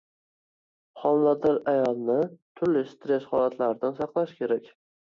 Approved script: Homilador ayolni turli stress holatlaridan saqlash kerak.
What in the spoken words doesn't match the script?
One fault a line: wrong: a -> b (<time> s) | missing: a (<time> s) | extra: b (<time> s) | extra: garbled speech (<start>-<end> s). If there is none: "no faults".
no faults